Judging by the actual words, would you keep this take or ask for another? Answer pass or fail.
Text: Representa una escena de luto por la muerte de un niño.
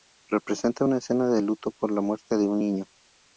pass